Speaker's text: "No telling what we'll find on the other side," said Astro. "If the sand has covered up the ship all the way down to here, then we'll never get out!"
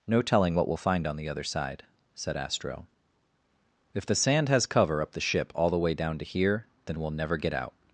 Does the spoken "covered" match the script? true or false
false